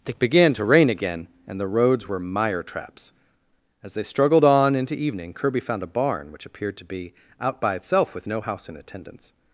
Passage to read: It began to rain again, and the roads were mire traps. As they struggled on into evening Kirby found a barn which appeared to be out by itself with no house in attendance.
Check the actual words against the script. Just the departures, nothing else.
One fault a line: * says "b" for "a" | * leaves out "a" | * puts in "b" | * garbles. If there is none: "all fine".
all fine